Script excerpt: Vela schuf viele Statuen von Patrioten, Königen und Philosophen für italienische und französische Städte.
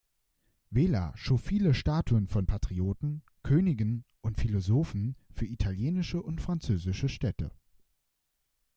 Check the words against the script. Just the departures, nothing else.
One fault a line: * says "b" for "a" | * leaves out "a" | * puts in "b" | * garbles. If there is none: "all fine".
all fine